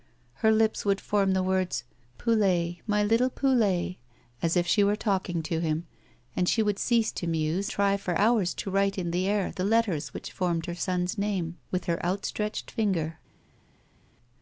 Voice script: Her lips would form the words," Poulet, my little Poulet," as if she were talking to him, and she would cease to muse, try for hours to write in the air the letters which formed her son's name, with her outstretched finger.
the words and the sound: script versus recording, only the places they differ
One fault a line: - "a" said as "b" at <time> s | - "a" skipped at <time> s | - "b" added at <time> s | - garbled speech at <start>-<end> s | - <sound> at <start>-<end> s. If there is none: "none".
none